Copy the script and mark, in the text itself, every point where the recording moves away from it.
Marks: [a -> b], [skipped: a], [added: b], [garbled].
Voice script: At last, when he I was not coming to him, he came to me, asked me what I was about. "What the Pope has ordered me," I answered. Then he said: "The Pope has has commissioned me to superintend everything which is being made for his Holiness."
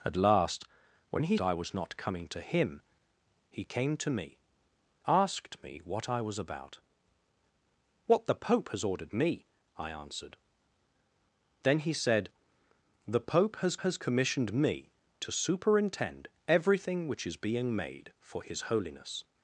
At last, when he I was not coming to him, he came to me, asked me what I was about. "What the Pope has ordered me," I answered. Then he said: "The Pope has has commissioned me to superintend everything which is being made for his Holiness."